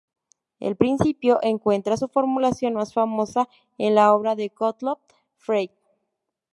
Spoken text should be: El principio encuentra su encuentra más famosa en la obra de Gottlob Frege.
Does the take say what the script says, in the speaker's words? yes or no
no